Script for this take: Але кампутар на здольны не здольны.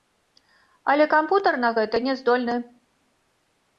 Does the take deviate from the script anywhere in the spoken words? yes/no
yes